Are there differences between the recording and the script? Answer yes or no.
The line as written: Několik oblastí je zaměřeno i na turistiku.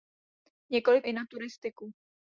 yes